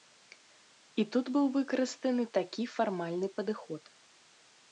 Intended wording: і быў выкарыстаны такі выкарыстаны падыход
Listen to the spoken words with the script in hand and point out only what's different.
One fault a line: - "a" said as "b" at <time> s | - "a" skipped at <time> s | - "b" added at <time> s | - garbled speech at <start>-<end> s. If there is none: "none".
- "тут" added at 1.1 s
- "выкарыстаны" said as "фармальны" at 2.8 s